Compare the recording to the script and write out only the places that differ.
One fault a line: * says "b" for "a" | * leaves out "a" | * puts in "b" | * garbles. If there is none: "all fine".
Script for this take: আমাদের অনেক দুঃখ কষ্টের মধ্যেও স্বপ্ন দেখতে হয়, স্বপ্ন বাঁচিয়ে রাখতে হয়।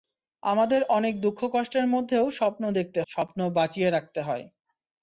* leaves out "হয়"